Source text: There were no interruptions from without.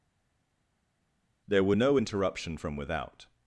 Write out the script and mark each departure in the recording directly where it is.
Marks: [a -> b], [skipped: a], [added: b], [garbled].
There were no [interruptions -> interruption] from without.